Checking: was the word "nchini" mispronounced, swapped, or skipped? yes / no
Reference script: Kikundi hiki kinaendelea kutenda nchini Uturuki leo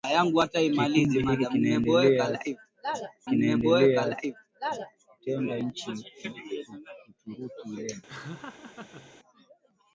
no